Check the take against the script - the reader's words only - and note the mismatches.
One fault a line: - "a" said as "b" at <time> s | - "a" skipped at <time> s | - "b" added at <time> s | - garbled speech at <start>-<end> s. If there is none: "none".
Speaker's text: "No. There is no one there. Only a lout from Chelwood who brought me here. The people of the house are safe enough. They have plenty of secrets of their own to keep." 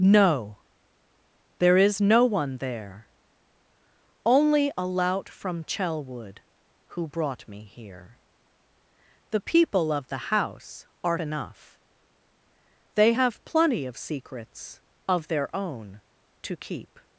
- "safe" skipped at 11.2 s